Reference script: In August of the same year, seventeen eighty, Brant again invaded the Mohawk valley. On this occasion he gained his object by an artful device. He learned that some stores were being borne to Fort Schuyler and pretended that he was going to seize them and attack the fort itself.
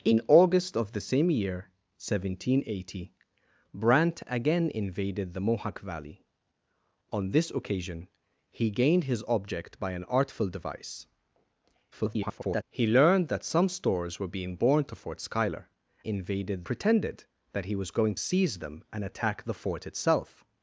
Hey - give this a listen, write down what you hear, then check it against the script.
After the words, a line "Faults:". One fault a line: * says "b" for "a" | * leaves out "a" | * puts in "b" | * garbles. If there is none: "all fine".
In August of the same year, seventeen eighty, Brant again invaded the Mohawk valley. On this occasion he gained his object by an artful device. [garbled] He learned that some stores were being borne to Fort Schuyler invaded pretended that he was going seize them and attack the fort itself.
Faults:
* garbles
* says "invaded" for "and"
* leaves out "to"